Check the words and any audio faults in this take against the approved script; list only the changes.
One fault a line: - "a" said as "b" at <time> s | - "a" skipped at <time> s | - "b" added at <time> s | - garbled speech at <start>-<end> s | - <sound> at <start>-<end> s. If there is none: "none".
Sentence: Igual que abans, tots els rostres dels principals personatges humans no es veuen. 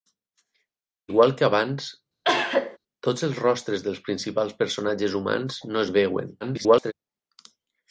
- cough at 2.2-2.8 s
- garbled speech at 6.4-6.9 s